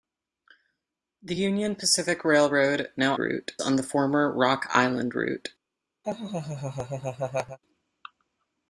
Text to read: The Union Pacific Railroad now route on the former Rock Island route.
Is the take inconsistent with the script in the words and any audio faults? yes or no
yes